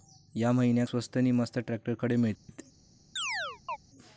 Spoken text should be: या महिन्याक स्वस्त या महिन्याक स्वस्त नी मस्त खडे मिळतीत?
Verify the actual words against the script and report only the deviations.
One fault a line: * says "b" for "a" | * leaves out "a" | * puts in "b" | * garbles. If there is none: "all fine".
* leaves out "या महिन्याक स्वस्त"
* puts in "ट्रॅक्टर"